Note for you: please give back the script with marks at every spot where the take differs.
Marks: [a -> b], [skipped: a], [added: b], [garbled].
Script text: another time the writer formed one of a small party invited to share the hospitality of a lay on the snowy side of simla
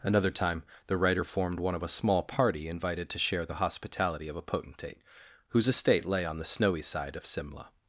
another time the writer formed one of a small party invited to share the hospitality of a [added: potentate whose estate] lay on the snowy side of simla